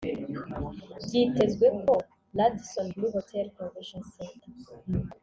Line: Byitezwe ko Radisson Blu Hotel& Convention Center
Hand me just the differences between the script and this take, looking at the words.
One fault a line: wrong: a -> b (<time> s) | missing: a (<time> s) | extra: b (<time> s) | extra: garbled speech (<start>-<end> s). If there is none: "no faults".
no faults